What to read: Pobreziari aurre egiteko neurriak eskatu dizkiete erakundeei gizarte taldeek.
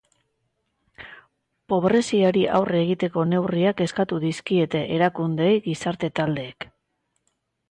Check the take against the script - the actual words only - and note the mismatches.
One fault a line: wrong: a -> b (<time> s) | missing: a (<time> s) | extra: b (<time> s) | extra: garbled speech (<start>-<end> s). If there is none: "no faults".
no faults